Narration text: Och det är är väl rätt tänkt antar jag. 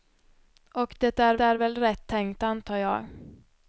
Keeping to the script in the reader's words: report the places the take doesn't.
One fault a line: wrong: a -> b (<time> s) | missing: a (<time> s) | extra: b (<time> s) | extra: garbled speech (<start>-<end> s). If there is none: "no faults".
no faults